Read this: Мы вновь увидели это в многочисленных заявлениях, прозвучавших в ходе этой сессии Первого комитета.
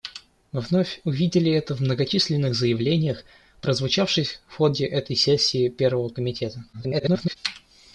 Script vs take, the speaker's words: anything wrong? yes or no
yes